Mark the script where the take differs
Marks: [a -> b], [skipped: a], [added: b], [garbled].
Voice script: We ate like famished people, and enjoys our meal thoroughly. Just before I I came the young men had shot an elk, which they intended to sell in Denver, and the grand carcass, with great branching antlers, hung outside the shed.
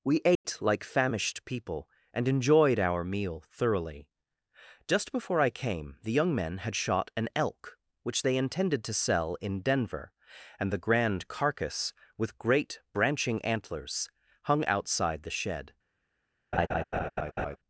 We ate like famished people, and [enjoys -> enjoyed] our meal thoroughly. Just before I [skipped: I] came the young men had shot an elk, which they intended to sell in Denver, and the grand carcass, with great branching antlers, hung outside the shed.